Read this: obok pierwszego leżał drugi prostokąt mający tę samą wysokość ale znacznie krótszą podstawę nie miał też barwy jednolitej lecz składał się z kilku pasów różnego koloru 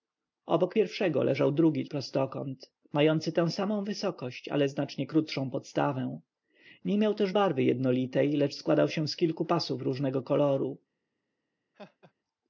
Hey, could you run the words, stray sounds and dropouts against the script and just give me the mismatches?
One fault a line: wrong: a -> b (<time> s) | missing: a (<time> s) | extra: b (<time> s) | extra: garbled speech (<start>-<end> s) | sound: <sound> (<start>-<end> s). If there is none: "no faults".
sound: laugh (11.7-12.1 s)